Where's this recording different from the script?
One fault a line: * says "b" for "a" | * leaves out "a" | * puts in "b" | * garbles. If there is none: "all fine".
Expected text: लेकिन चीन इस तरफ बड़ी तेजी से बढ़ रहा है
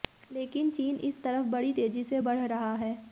all fine